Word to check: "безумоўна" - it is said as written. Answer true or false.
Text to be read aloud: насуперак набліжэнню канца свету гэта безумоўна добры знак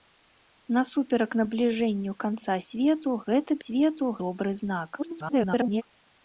false